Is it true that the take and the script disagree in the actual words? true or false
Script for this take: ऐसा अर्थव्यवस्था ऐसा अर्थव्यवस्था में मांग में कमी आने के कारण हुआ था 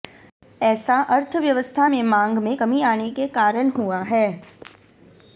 true